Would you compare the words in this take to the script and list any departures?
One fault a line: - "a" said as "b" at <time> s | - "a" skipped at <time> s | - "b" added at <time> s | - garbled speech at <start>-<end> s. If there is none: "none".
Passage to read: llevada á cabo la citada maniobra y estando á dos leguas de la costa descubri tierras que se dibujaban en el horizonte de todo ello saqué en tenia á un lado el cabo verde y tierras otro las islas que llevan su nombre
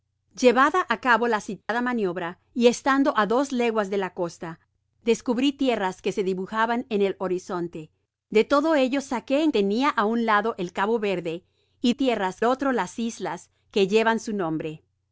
none